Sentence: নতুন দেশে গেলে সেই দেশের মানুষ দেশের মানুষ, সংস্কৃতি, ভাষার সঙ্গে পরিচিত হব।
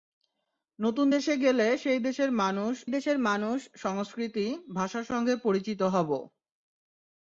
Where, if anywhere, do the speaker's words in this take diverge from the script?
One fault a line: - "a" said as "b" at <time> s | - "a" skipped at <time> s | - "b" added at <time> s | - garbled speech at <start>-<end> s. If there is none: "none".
none